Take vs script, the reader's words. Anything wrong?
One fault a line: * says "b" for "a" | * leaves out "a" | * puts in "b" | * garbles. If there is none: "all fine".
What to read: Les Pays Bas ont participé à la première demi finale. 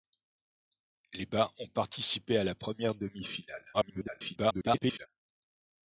* leaves out "Pays"
* garbles